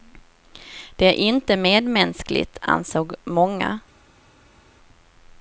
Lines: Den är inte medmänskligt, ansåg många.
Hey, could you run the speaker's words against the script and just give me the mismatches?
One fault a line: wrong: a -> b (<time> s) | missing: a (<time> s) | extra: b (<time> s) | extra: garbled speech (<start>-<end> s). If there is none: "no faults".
wrong: Den -> Det (0.9 s)